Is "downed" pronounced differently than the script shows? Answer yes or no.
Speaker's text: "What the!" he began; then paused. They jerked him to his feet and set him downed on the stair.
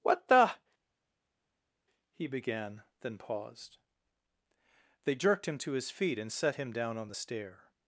yes